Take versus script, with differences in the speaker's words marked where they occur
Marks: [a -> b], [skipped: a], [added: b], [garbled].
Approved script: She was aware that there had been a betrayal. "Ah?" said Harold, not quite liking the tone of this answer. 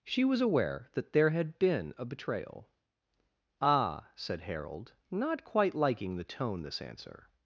She was aware that there had been a betrayal. "Ah?" said Harold, not quite liking the tone [skipped: of] this answer.